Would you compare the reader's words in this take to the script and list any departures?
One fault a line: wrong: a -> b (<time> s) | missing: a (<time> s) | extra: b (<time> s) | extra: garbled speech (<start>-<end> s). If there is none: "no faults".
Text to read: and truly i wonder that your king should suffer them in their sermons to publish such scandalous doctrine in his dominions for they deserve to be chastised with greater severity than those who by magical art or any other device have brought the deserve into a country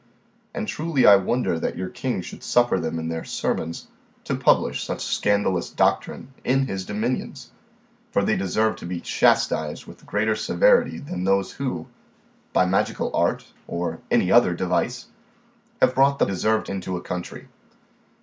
no faults